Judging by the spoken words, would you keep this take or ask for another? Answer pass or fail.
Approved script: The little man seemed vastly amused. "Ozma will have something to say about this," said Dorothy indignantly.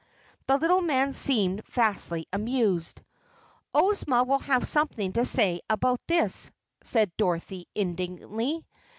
pass